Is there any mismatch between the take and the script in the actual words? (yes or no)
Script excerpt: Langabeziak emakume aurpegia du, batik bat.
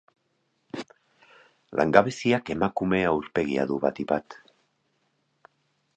no